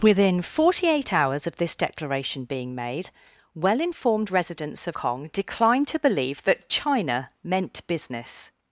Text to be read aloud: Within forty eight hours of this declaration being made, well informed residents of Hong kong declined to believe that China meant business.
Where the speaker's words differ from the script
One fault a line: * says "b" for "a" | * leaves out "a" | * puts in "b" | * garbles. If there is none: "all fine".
* leaves out "Hong"